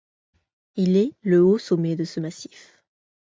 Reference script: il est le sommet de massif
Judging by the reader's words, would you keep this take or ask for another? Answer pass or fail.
fail